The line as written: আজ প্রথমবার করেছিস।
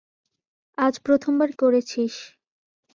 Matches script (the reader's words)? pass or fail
pass